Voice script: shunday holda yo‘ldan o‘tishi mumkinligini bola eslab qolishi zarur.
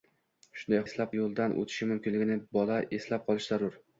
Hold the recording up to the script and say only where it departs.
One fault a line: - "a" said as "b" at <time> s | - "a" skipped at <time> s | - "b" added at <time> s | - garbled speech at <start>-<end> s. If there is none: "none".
- "holda" said as "eslab" at 0.9 s